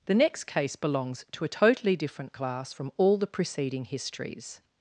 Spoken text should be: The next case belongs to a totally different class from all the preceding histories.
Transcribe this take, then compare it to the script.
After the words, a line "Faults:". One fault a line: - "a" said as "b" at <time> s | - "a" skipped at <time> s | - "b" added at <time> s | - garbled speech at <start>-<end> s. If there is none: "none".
The next case belongs to a totally different class from all the preceding histories.
Faults:
none